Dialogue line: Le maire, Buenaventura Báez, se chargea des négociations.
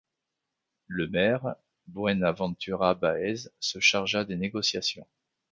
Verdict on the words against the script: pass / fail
pass